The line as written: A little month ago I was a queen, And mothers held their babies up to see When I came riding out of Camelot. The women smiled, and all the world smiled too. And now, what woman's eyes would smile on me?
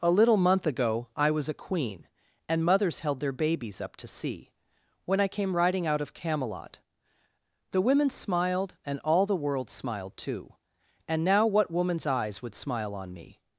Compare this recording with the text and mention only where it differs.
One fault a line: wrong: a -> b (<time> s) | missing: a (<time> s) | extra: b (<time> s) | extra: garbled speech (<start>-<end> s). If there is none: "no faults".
no faults